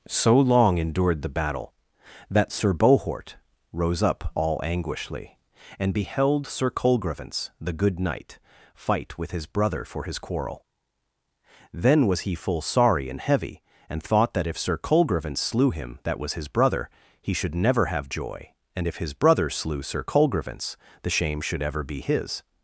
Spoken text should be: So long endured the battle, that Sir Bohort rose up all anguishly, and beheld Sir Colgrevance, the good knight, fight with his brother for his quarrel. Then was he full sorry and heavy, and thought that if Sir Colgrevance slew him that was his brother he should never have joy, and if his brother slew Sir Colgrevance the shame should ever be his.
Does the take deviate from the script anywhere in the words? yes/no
no